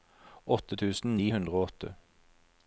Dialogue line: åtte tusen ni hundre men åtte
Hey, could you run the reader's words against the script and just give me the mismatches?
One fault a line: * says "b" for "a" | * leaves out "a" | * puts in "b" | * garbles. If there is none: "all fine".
* says "og" for "men"